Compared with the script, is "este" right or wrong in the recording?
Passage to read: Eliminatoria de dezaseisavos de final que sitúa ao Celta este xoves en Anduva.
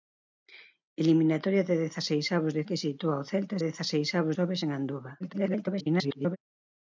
wrong